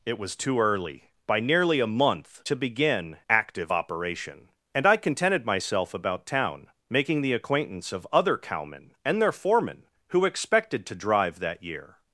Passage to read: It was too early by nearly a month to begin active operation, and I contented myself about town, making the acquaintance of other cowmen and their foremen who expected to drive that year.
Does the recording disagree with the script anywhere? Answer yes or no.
no